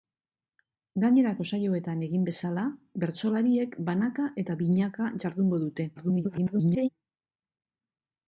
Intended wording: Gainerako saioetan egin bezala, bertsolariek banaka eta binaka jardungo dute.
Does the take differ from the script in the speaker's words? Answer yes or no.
yes